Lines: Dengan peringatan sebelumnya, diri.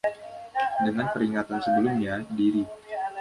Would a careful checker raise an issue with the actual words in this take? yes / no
no